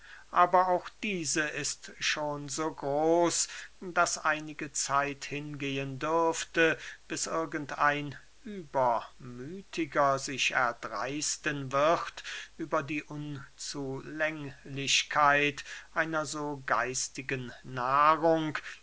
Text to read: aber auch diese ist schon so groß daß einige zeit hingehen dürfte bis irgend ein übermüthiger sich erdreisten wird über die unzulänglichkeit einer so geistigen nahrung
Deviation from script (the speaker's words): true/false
false